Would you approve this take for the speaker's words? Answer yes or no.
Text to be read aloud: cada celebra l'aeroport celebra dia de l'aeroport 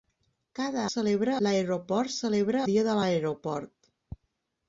yes